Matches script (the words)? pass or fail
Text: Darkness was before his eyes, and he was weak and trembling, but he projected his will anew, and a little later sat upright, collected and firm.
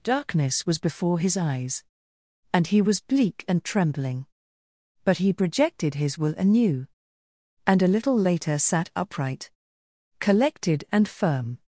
fail